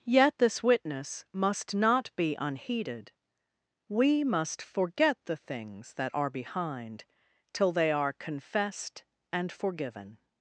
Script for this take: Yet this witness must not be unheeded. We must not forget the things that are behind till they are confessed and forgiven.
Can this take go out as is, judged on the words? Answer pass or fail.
fail